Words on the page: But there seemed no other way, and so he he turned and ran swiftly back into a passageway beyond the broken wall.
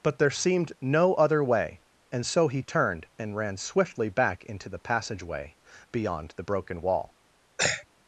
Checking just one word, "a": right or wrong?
wrong